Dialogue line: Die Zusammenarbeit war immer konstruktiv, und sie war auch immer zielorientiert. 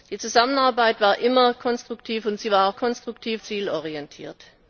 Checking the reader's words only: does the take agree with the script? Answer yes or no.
no